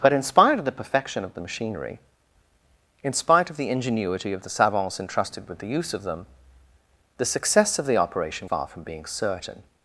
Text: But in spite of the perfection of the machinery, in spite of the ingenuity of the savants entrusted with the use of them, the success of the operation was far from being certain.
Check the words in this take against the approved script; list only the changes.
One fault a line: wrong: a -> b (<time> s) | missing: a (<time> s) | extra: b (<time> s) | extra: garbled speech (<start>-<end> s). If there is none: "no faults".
missing: was (8.5 s)